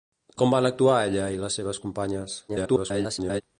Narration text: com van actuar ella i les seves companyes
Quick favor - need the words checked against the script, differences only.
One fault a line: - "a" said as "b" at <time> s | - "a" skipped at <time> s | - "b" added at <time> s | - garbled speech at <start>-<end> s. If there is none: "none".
- garbled speech at 2.5-3.4 s